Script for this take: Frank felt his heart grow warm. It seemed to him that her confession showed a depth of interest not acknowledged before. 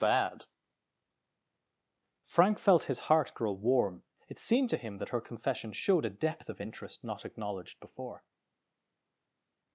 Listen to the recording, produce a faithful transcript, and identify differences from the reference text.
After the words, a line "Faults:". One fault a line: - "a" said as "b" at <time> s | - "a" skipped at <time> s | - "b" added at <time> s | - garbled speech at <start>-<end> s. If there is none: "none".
bad Frank felt his heart grow warm. It seemed to him that her confession showed a depth of interest not acknowledged before.
Faults:
- "bad" added at 0.0 s